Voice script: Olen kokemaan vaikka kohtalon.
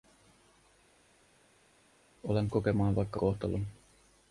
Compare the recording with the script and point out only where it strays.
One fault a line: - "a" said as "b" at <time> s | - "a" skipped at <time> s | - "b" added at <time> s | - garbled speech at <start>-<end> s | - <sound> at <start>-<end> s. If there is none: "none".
none